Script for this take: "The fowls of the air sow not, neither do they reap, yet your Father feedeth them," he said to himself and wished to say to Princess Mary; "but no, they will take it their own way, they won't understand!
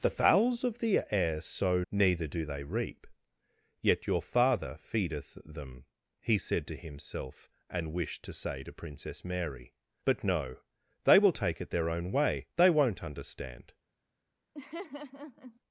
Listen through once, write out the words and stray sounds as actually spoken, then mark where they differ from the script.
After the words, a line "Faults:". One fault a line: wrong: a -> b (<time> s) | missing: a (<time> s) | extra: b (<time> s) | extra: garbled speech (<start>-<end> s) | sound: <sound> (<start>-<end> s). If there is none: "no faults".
"The fowls of the air sow neither do they reap, yet your Father feedeth them," he said to himself and wished to say to Princess Mary; "but no, they will take it their own way, they won't understand!
Faults:
missing: not (1.8 s)
sound: laugh (14.5-15.6 s)